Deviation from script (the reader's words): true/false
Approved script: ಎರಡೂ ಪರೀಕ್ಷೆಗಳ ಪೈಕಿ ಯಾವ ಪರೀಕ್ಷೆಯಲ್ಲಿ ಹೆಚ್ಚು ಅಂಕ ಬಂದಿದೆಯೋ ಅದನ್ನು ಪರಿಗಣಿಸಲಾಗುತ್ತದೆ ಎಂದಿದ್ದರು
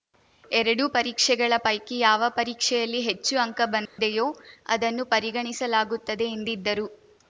false